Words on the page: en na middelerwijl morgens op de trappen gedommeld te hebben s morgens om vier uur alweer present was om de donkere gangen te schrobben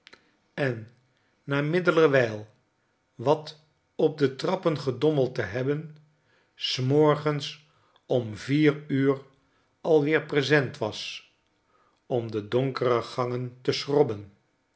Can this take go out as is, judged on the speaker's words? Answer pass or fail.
fail